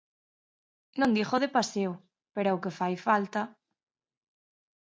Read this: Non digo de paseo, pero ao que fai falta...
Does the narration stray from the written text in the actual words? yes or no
no